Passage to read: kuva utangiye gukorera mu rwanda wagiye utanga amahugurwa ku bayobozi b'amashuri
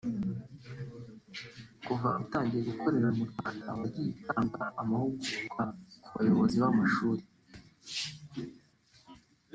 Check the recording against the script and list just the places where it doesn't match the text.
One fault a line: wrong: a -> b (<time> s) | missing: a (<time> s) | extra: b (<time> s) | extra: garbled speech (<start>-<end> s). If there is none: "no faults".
no faults